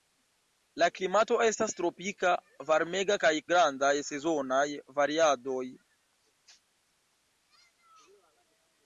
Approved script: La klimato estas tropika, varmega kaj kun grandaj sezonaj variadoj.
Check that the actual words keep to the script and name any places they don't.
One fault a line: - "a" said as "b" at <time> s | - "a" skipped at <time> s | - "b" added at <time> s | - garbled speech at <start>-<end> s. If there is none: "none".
- "kun" skipped at 3.3 s